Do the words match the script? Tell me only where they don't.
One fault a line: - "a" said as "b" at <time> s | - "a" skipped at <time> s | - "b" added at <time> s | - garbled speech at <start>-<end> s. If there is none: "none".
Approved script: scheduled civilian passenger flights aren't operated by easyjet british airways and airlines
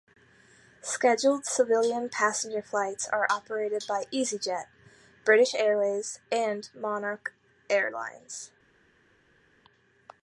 - "aren't" said as "are" at 3.1 s
- "monarch" added at 6.7 s